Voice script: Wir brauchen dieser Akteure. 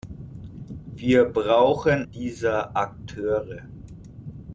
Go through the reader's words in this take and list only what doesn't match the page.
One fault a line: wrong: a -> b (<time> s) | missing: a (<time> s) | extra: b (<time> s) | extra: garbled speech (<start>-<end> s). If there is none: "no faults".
no faults